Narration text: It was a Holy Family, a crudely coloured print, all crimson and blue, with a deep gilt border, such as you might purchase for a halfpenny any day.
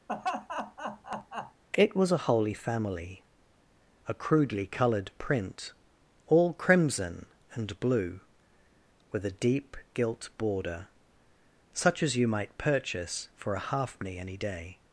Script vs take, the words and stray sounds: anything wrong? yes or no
yes